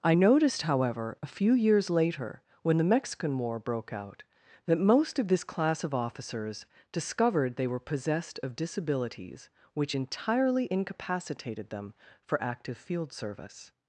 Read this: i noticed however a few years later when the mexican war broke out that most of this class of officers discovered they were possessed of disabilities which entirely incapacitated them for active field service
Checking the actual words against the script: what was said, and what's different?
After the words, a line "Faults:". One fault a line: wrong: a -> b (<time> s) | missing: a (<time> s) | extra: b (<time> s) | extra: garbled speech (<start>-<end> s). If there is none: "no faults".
i noticed however a few years later when the mexican war broke out that most of this class of officers discovered they were possessed of disabilities which entirely incapacitated them for active field service
Faults:
no faults